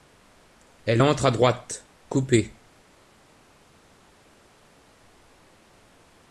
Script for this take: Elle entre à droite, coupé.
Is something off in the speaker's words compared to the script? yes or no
no